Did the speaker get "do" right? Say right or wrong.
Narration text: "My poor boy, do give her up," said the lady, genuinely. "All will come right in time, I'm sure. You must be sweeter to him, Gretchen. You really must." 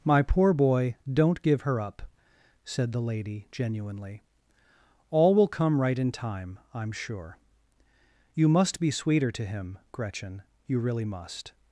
wrong